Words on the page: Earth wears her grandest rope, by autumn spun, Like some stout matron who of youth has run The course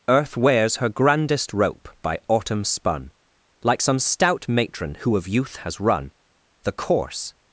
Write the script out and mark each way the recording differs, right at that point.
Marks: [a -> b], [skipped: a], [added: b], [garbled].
Earth wears her grandest rope, by autumn spun, Like some stout matron who of youth has run The course